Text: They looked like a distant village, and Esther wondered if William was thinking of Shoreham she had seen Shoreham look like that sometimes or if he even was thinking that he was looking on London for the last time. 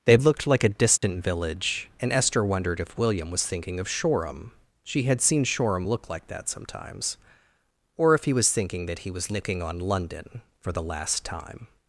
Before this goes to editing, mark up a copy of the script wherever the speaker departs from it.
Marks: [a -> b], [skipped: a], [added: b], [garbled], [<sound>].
They looked like a distant [dropout] village, and Esther wondered if William was thinking of Shoreham she had seen Shoreham look like that sometimes or if he [skipped: even] was thinking that he was looking on London for the last time.